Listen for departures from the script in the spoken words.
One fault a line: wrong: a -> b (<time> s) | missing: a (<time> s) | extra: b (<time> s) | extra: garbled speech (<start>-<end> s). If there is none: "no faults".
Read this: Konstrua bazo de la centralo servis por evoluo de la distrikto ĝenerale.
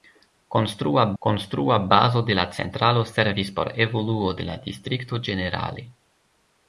extra: konstrua (1.2 s)